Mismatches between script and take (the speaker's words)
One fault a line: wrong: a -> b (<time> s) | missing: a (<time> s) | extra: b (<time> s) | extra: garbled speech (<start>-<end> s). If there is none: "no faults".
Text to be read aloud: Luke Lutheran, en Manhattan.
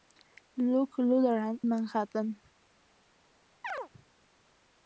missing: en (1.6 s)